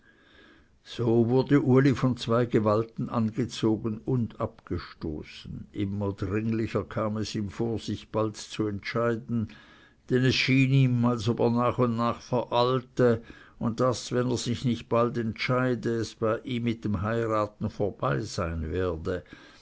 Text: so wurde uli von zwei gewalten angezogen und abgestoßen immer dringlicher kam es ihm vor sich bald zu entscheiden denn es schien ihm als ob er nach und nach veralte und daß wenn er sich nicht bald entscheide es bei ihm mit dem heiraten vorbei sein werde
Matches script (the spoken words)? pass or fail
pass